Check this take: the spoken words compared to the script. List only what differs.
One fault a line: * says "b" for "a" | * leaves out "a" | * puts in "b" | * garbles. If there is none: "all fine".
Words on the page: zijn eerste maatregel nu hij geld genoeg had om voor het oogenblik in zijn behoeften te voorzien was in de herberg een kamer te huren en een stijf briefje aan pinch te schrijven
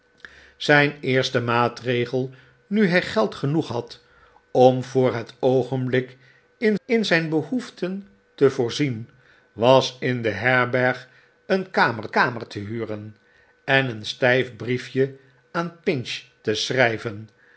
* puts in "in"
* puts in "kamer"